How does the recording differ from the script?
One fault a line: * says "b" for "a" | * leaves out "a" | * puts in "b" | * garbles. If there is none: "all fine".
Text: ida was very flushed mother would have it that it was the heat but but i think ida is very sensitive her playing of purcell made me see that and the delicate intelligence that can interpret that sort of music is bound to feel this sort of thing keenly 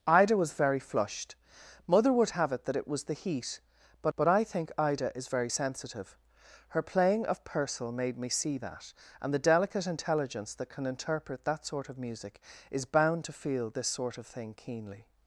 all fine